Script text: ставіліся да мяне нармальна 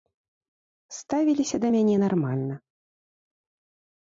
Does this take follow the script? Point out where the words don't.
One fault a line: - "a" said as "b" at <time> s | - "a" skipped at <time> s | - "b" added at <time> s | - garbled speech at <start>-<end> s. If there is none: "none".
none